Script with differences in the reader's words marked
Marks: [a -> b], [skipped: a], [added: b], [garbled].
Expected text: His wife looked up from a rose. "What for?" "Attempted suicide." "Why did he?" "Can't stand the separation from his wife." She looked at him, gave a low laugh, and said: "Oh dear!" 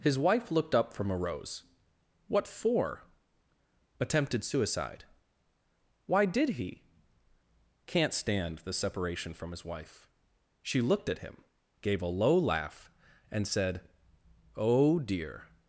His wife looked up from a rose. "What for?" "Attempted suicide." "Why did he?" "Can't stand the separation from his wife." She looked at him, gave a low laugh, and said: "Oh dear!"